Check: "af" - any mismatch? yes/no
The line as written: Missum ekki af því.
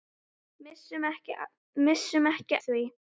yes